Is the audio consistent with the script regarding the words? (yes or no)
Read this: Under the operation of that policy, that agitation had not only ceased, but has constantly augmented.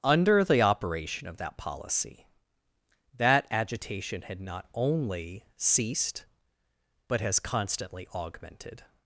yes